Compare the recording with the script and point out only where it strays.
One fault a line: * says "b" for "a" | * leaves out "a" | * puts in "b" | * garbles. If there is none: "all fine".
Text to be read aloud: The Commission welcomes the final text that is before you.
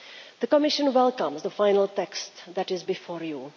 all fine